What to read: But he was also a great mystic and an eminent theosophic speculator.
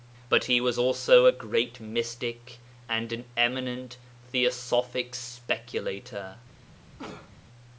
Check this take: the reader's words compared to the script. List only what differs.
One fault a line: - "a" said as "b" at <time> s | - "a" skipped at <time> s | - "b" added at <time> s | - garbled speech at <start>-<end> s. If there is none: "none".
none